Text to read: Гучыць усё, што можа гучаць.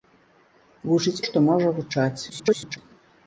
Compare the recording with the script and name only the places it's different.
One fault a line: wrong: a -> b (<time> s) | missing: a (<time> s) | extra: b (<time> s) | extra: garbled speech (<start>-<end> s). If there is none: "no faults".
missing: усё (1.2 s)
extra: garbled speech (2.3-2.8 s)